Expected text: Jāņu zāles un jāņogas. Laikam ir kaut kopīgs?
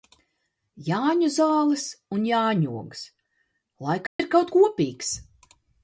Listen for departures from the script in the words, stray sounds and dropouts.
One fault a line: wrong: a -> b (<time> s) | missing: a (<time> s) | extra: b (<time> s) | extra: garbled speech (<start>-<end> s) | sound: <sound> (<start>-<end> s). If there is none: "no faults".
sound: dropout (4.1-4.2 s)